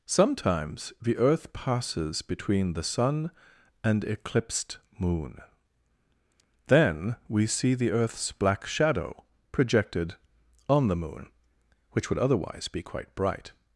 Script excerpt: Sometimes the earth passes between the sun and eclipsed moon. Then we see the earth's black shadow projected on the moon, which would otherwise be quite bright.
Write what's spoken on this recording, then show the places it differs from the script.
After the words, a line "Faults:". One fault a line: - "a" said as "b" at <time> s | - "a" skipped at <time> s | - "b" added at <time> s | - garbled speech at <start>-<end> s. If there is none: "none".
Sometimes the earth passes between the sun and eclipsed moon. Then we see the earth's black shadow projected on the moon, which would otherwise be quite bright.
Faults:
none